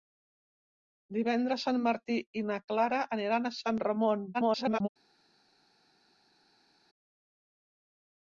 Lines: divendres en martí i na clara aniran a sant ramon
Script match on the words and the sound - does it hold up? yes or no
no